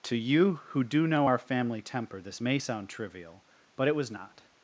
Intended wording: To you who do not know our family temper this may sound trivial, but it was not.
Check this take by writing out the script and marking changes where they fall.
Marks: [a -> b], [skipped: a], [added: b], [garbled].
To you who do [skipped: not] know our family temper this may sound trivial, but it was not.